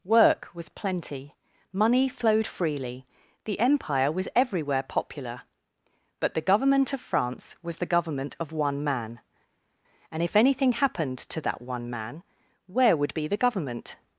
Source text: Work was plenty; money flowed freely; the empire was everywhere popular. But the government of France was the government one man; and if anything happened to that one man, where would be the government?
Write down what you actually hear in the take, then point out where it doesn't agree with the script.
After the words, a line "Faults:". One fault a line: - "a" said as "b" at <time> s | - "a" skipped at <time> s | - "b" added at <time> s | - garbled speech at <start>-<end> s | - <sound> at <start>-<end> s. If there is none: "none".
Work was plenty; money flowed freely; the empire was everywhere popular. But the government of France was the government of one man; and if anything happened to that one man, where would be the government?
Faults:
- "of" added at 8.4 s